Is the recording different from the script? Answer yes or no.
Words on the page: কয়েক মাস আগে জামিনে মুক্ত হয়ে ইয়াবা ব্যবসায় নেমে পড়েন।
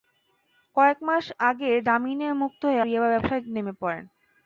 no